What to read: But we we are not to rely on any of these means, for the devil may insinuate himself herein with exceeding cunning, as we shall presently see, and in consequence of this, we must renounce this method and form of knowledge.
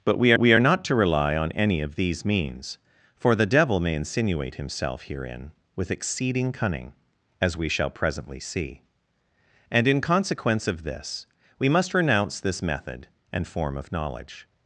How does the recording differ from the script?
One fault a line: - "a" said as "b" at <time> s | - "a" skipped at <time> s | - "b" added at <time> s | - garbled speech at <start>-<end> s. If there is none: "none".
none